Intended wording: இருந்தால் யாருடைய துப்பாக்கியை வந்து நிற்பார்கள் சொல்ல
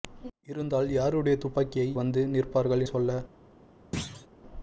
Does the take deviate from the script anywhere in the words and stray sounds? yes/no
yes